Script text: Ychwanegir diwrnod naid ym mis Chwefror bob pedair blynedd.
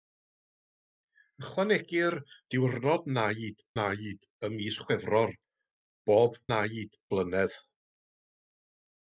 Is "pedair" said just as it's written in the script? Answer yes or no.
no